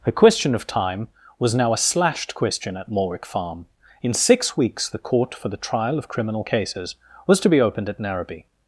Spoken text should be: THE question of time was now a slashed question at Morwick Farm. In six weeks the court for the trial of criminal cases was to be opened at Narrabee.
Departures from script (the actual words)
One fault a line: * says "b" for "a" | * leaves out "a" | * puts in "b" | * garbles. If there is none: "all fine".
all fine